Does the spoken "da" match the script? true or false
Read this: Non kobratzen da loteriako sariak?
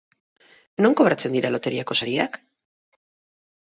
false